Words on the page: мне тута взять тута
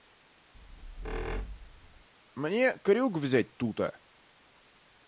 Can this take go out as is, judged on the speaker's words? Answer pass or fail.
fail